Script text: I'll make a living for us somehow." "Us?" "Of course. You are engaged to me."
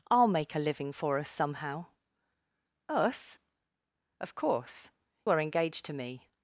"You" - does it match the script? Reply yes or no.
no